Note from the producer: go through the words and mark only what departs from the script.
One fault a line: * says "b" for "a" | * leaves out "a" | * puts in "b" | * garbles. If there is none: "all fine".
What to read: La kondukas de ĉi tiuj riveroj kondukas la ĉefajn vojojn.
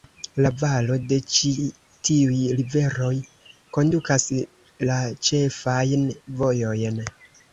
* says "valo" for "kondukas"